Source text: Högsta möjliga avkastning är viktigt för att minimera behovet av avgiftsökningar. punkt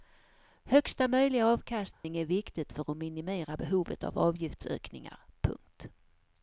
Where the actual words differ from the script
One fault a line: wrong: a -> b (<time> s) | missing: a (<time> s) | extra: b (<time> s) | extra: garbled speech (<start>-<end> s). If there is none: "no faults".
no faults